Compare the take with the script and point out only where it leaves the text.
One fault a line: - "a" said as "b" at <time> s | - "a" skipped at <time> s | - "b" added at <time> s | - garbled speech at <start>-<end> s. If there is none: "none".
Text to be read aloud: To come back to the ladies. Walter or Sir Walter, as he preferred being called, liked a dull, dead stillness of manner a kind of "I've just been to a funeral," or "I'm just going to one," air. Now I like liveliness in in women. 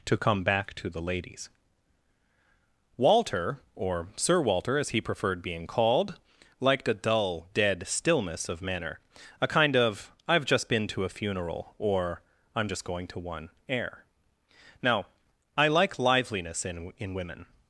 none